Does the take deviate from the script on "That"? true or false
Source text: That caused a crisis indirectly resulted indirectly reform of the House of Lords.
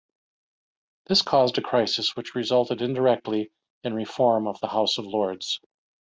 true